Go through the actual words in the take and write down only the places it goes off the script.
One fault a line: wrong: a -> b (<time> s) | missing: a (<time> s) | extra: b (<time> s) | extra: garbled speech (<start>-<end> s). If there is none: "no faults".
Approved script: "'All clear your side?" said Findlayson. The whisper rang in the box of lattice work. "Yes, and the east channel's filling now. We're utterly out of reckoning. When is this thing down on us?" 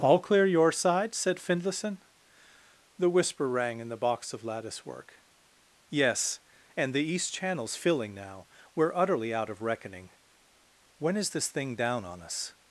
no faults